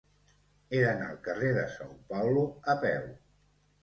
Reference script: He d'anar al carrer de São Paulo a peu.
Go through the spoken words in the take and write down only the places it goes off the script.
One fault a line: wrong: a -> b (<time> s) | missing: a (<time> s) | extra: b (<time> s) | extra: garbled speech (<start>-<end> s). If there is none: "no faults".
no faults